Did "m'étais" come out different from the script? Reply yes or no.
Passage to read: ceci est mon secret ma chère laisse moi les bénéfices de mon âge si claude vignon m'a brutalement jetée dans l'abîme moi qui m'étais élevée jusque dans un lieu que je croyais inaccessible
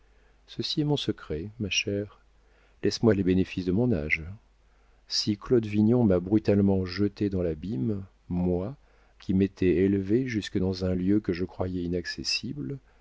no